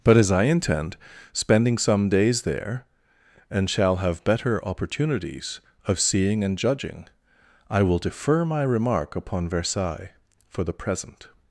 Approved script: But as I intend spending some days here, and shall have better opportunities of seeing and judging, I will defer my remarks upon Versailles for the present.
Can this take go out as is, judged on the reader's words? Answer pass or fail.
fail